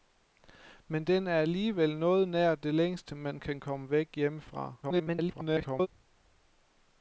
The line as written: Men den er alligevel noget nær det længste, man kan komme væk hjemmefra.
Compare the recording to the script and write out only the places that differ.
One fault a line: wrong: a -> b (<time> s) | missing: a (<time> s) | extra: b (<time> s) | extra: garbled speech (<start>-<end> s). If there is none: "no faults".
extra: garbled speech (4.8-5.9 s)